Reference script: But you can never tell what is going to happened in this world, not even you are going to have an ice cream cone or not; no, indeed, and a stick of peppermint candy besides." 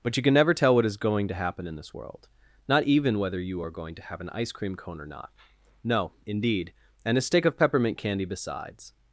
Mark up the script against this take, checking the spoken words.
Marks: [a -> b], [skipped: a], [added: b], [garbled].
But you can never tell what is going to [happened -> happen] in this world, not even [added: whether] you are going to have an ice cream cone or not; no, indeed, and a stick of peppermint candy besides."